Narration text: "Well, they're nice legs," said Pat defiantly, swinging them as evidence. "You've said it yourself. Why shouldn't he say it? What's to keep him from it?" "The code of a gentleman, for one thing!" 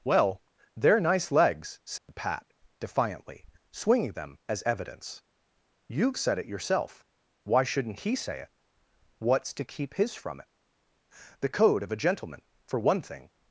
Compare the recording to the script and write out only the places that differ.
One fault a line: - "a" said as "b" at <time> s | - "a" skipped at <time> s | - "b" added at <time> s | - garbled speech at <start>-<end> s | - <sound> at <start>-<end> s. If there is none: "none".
- dropout at 2.0-2.1 s
- "him" said as "his" at 9.9 s